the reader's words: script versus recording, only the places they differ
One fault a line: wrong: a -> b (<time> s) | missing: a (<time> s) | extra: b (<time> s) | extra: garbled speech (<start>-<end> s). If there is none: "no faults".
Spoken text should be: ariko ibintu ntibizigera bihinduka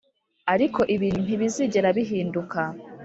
no faults